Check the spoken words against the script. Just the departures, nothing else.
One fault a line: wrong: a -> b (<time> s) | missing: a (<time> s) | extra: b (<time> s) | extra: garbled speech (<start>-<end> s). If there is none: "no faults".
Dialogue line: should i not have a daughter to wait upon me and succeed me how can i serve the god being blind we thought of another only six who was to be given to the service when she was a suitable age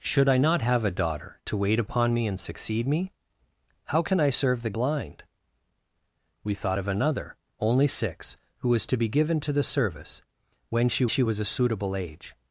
missing: god being (4.7 s)
extra: she (11.1 s)